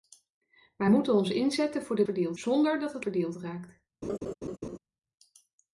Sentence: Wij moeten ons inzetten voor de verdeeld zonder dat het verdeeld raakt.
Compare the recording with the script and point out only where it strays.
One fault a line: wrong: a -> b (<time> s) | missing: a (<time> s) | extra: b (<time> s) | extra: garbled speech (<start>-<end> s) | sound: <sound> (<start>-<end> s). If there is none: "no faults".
sound: laugh (4.0-4.8 s)